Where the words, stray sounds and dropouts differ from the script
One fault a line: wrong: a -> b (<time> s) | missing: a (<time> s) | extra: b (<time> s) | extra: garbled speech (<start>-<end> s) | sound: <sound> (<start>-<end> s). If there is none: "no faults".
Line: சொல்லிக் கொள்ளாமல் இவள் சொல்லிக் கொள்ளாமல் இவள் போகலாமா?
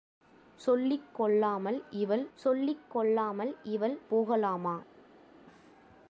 no faults